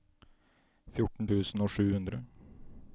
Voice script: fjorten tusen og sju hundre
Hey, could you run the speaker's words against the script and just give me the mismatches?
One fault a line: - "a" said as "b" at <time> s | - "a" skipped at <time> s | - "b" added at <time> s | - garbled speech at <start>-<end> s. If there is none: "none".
none